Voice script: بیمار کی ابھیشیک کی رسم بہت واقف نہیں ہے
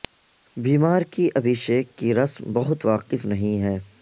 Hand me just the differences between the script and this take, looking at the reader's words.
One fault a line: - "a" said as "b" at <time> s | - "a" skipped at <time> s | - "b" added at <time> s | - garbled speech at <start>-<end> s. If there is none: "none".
none